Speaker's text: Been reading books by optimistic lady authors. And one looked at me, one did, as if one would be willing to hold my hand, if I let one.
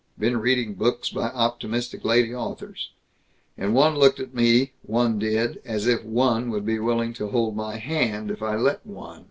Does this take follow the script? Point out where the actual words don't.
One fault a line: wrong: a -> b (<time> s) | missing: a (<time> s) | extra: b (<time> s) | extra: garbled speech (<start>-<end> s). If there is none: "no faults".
no faults